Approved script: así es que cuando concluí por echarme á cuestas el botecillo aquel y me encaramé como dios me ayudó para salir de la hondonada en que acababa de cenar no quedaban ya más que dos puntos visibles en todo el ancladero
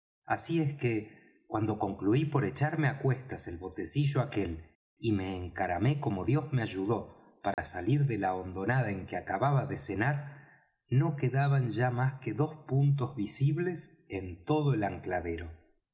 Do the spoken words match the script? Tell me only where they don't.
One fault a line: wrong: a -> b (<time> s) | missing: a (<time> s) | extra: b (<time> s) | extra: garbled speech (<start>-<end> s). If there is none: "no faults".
no faults